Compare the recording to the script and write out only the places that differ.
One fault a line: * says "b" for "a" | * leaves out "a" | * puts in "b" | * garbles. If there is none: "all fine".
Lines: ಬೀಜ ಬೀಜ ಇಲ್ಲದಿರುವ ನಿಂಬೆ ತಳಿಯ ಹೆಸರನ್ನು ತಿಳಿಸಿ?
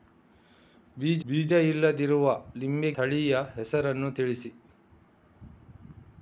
all fine